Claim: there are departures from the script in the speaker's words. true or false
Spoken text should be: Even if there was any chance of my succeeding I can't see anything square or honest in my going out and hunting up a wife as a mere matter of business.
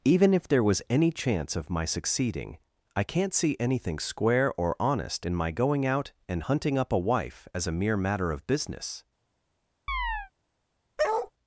false